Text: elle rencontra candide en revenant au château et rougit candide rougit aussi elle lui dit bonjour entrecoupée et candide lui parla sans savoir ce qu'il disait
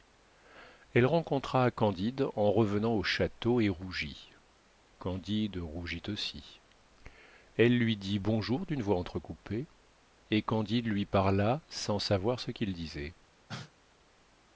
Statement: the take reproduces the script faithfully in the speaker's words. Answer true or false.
false